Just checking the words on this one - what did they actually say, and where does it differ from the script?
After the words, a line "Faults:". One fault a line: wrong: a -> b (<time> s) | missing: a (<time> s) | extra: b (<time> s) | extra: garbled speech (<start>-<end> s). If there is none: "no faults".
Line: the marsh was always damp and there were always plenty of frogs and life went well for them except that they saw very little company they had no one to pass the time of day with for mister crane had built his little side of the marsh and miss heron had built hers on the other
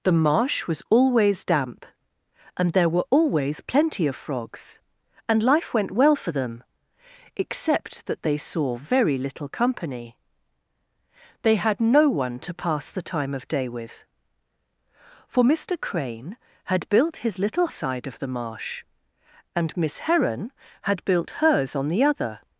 the marsh was always damp and there were always plenty of frogs and life went well for them except that they saw very little company they had no one to pass the time of day with for mister crane had built his little side of the marsh and miss heron had built hers on the other
Faults:
no faults